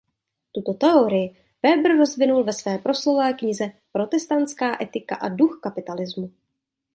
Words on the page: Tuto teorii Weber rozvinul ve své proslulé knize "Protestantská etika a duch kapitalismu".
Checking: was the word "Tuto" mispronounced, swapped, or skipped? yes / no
no